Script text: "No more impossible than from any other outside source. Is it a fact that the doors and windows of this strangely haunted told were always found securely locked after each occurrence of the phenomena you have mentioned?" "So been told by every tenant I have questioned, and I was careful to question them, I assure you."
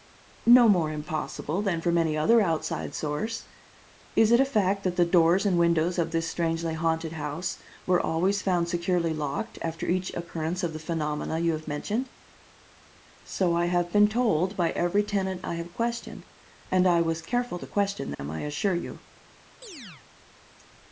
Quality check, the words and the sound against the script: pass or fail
fail